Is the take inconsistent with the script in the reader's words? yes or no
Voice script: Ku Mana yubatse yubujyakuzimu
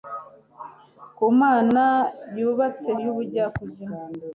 no